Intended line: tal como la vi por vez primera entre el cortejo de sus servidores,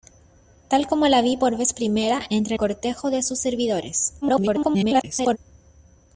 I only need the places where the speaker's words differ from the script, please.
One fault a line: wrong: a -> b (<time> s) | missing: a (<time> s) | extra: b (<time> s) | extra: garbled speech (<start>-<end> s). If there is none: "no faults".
missing: el (2.5 s)
extra: garbled speech (4.2-5.4 s)